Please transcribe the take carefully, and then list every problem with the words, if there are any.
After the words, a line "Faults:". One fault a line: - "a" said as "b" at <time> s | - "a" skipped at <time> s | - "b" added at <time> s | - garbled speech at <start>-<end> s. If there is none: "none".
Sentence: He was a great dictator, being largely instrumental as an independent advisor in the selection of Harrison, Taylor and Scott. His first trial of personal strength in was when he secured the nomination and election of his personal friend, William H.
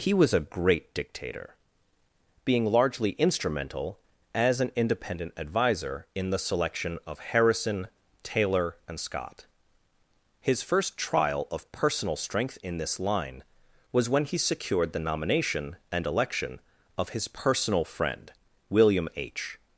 He was a great dictator, being largely instrumental as an independent advisor in the selection of Harrison, Taylor and Scott. His first trial of personal strength in this line was when he secured the nomination and election of his personal friend, William H.
Faults:
- "this line" added at 12.8 s